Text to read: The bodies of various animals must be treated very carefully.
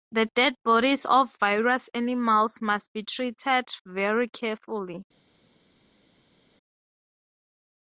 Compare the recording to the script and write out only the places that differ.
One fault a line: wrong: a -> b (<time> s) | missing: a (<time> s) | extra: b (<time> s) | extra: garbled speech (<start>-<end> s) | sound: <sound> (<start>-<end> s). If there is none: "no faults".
extra: dead (0.3 s)